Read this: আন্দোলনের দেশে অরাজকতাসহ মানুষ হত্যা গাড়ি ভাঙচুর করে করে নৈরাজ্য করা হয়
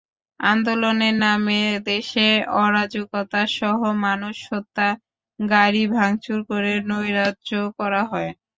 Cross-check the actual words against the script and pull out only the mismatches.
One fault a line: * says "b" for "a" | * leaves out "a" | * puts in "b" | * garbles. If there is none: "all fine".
* puts in "নামে"
* leaves out "করে"